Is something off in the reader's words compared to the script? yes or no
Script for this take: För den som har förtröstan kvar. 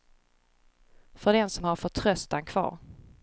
no